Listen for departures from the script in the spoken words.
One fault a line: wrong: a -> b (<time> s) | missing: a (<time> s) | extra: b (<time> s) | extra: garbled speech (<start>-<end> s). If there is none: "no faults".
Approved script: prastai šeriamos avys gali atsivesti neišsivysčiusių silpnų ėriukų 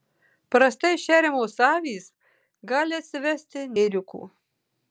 missing: neišsivysčiusių silpnų (3.7 s)